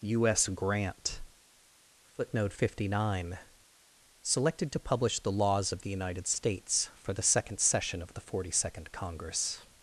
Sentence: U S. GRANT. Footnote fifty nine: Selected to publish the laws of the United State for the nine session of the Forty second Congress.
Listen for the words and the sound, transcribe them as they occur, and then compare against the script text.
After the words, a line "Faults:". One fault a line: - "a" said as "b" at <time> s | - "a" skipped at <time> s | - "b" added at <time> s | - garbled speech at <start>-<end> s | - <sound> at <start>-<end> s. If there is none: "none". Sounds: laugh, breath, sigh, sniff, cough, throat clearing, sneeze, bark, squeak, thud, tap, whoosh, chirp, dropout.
U S. GRANT. Footnote fifty nine: Selected to publish the laws of the United States for the second session of the Forty second Congress.
Faults:
- "State" said as "States" at 6.3 s
- "nine" said as "second" at 7.2 s